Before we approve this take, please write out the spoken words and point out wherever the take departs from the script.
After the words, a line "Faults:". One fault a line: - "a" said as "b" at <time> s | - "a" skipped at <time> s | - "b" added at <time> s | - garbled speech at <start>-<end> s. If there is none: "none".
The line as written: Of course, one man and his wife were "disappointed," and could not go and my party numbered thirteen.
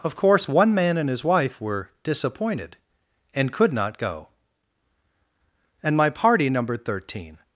Of course, one man and his wife were "disappointed," and could not go and my party numbered thirteen.
Faults:
none